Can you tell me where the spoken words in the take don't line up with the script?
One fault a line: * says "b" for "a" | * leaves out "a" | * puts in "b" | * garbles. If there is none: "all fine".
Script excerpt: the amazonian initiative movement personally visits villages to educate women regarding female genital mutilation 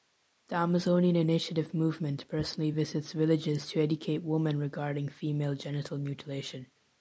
all fine